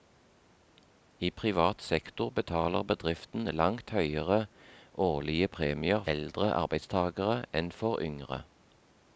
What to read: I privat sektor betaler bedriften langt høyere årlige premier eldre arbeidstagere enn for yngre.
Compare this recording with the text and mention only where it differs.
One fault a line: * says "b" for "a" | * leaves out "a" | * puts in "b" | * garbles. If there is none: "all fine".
all fine